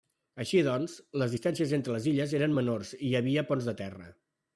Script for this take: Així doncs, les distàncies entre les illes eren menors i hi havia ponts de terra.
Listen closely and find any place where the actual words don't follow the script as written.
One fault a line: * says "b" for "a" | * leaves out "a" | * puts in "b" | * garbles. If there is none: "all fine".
all fine